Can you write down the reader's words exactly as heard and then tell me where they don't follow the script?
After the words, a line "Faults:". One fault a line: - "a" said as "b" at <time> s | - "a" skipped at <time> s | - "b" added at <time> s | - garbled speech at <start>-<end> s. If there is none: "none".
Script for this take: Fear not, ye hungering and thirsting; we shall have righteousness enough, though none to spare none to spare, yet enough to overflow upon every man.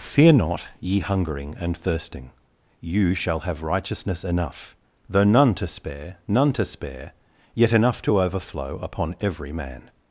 Fear not, ye hungering and thirsting; you shall have righteousness enough, though none to spare none to spare, yet enough to overflow upon every man.
Faults:
- "we" said as "you" at 2.8 s